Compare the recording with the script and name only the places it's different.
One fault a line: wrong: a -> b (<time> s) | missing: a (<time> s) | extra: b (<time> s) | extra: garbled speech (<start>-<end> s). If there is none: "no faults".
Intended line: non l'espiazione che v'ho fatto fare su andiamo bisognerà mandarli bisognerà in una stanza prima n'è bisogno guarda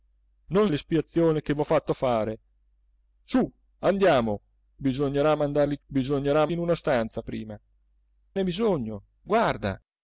no faults